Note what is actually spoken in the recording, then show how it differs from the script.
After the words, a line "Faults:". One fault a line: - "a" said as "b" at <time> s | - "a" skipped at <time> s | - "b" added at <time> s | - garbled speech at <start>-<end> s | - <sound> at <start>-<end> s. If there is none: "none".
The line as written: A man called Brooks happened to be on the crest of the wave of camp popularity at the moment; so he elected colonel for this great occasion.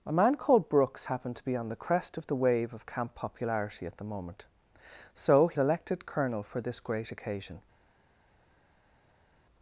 A man called Brooks happened to be on the crest of the wave of camp popularity at the moment; so he elected colonel for this great occasion.
Faults:
none